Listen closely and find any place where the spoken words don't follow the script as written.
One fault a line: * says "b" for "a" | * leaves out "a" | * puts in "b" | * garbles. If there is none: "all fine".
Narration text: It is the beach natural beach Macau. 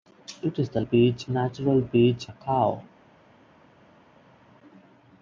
all fine